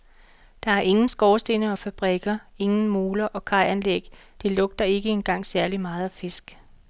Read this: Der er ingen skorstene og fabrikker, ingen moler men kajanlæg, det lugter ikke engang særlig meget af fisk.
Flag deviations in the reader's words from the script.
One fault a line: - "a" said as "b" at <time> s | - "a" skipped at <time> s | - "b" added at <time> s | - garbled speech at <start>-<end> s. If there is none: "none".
- "men" said as "og" at 3.2 s